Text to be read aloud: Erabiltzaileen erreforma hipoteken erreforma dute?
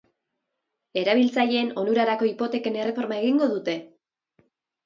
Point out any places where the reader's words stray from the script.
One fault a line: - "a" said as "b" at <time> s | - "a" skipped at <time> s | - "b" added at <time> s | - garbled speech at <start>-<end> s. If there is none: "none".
- "erreforma" said as "onurarako" at 1.8 s
- "egingo" added at 3.2 s